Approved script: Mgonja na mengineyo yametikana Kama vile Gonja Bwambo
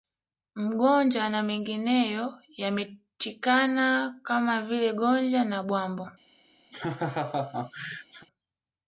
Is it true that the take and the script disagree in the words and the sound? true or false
true